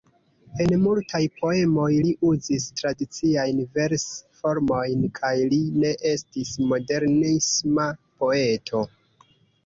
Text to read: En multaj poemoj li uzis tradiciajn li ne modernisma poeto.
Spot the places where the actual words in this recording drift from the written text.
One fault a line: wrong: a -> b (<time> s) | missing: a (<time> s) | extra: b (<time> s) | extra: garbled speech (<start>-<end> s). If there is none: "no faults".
extra: vers formojn kaj (3.8 s)
extra: estis (6.1 s)